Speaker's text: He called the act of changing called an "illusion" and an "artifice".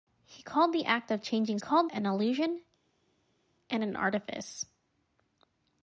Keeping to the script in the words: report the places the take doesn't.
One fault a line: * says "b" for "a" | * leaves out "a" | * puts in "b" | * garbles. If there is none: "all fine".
all fine